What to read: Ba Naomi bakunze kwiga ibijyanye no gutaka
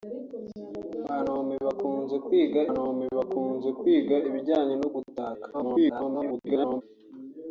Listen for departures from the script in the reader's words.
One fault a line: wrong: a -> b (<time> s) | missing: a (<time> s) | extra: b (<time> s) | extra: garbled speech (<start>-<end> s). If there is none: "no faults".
extra: Naomi bakunze kwiga (2.7 s)
extra: garbled speech (5.5-6.8 s)